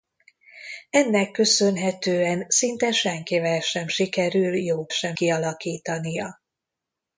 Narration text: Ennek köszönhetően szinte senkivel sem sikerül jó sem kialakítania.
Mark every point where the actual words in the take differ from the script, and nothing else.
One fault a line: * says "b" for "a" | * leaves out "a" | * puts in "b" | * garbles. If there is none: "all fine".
all fine